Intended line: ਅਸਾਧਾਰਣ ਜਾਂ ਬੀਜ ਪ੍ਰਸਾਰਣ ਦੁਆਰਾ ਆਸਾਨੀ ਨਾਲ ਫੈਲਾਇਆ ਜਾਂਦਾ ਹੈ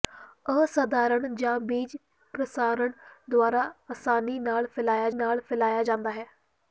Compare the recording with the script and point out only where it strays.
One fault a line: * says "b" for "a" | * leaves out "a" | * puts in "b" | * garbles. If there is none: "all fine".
* puts in "ਨਾਲ ਫੈਲਾਇਆ"